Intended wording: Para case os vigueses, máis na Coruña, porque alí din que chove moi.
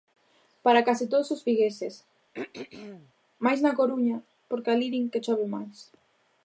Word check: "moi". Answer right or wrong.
wrong